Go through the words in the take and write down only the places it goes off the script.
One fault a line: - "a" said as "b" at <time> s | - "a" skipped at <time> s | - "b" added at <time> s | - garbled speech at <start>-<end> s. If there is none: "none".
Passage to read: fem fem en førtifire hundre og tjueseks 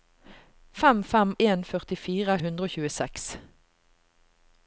none